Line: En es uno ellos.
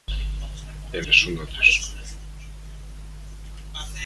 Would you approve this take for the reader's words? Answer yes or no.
yes